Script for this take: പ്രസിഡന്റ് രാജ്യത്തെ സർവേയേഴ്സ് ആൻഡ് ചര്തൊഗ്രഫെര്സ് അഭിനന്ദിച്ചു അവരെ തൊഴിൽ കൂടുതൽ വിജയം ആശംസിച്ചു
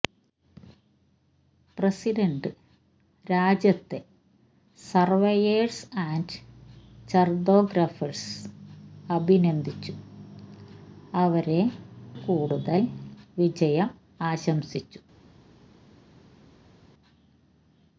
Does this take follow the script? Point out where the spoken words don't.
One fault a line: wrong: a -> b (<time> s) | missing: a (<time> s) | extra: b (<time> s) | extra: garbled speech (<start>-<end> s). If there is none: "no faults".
missing: തൊഴിൽ (11.6 s)